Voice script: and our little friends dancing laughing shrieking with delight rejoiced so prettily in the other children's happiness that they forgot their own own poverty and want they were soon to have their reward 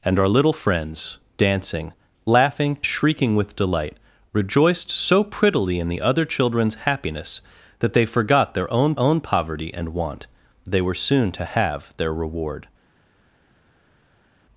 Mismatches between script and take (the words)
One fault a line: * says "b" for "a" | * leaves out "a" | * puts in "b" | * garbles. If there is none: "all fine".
all fine